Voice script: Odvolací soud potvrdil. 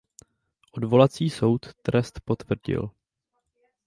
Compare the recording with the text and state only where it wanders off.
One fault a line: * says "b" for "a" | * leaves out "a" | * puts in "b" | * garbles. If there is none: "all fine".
* puts in "trest"